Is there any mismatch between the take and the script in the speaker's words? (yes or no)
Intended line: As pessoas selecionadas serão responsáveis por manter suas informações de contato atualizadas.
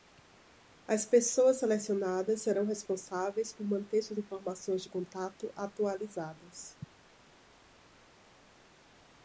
no